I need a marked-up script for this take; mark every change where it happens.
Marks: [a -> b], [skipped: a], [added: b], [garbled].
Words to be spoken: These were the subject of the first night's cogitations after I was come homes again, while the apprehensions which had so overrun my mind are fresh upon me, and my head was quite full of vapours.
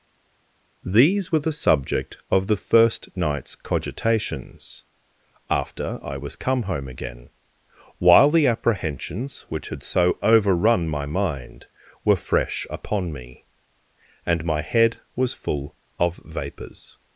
These were the subject of the first night's cogitations after I was come [homes -> home] again, while the apprehensions which had so overrun my mind [are -> were] fresh upon me, and my head was [skipped: quite] full of vapours.